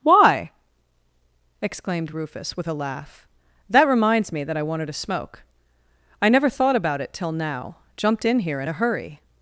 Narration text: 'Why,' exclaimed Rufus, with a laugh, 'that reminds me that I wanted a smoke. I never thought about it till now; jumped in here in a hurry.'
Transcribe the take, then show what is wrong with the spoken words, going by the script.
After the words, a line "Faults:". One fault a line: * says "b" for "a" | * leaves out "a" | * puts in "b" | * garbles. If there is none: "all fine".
'Why,' exclaimed Rufus, with a laugh, 'that reminds me that I wanted a smoke. I never thought about it till now; jumped in here in a hurry.'
Faults:
all fine